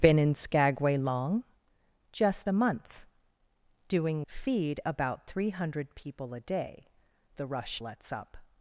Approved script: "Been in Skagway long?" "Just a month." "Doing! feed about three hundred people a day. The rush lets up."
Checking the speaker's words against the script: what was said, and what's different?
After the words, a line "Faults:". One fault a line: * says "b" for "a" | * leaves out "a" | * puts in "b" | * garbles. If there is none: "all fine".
"Been in Skagway long?" "Just a month." "Doing! feed about three hundred people a day. The rush lets up."
Faults:
all fine